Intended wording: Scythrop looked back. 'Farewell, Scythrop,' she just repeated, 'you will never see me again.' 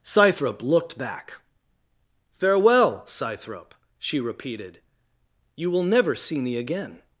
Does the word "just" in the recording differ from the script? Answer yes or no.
yes